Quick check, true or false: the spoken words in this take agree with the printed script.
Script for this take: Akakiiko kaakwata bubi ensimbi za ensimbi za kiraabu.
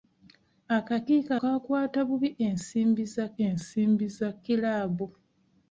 true